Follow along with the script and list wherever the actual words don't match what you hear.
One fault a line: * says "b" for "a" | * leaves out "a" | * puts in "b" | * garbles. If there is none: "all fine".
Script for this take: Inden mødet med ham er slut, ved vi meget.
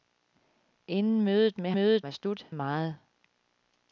* says "mødet" for "ham"
* leaves out "ved vi"